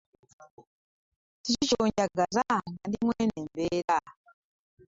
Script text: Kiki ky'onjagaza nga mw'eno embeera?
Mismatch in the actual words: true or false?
true